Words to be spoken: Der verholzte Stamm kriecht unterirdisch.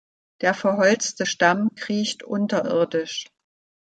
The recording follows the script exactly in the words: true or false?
true